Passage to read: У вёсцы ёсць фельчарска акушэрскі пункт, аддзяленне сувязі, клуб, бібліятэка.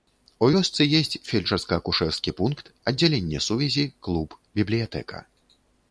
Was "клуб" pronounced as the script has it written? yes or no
yes